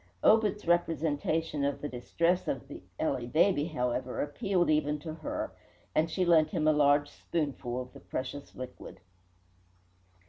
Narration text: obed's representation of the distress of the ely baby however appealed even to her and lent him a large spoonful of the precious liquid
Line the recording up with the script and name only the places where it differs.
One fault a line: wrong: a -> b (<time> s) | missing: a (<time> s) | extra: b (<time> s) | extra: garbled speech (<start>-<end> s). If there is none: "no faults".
extra: she (6.1 s)